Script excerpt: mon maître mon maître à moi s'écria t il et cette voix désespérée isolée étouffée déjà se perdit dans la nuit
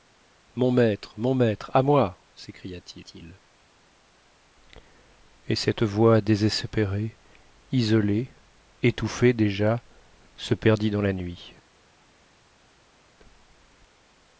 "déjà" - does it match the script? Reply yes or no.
yes